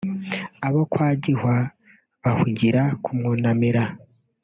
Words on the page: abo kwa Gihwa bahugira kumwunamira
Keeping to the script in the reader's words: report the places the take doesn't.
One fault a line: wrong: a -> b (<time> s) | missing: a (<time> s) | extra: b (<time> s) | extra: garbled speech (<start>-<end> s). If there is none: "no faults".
no faults